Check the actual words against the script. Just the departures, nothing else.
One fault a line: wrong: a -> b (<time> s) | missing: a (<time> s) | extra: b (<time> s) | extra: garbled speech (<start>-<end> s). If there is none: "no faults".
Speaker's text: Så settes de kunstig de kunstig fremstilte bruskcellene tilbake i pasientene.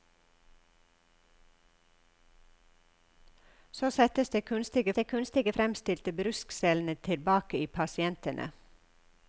no faults